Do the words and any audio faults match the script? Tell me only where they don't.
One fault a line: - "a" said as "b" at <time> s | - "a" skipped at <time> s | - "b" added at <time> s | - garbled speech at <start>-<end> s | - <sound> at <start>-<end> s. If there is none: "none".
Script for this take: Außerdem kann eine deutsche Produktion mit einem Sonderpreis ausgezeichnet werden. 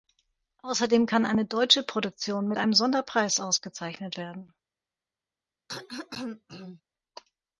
- throat clearing at 5.7-6.8 s